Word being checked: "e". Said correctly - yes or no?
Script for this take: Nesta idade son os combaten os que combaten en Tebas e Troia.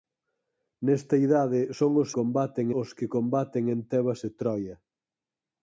yes